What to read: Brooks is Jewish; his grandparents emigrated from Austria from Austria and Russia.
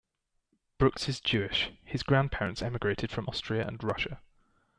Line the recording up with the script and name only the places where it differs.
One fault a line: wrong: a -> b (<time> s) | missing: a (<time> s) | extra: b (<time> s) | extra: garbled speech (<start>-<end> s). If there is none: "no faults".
missing: from Austria (3.7 s)